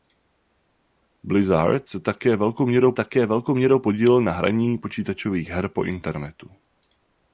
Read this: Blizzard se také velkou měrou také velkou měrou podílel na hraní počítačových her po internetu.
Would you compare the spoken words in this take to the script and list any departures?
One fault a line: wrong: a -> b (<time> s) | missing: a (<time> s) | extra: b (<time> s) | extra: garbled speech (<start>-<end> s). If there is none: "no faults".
no faults